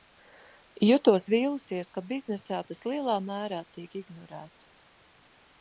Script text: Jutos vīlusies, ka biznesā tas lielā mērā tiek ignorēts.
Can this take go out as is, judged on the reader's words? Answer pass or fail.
pass